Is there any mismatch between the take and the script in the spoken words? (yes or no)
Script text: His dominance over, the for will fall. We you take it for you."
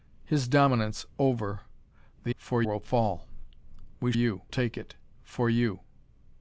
no